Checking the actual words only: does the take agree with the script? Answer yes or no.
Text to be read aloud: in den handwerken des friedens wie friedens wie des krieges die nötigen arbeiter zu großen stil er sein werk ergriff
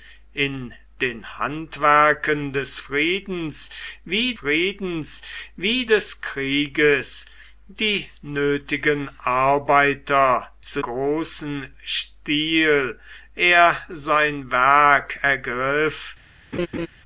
yes